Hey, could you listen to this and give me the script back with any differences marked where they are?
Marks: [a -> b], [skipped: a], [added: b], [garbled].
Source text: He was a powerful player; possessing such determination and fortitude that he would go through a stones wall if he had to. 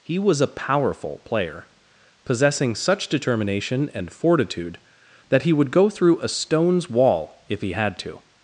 He was a powerful player; possessing such determination and fortitude that he would go through a stones wall if he had to.